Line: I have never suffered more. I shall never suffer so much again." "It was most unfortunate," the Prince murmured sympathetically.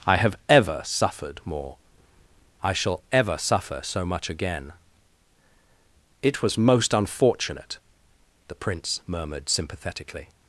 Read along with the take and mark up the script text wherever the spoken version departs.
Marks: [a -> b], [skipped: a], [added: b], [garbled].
I have [never -> ever] suffered more. I shall [never -> ever] suffer so much again." "It was most unfortunate," the Prince murmured sympathetically.